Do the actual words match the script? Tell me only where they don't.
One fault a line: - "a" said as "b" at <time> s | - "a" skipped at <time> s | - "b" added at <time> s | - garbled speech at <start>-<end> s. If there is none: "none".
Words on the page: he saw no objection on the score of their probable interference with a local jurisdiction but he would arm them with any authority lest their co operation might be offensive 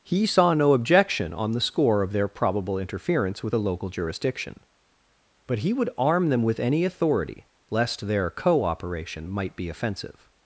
none